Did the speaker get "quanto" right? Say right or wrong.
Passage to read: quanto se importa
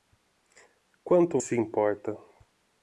right